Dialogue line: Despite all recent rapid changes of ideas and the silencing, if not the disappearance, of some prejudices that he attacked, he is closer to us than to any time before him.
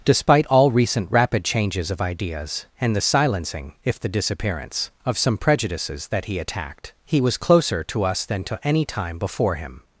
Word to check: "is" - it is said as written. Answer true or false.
false